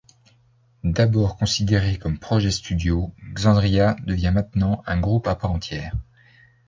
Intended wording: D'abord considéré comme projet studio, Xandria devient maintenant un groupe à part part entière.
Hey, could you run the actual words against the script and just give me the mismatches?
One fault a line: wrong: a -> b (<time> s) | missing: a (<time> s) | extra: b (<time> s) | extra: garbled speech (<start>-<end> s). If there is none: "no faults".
missing: part (5.5 s)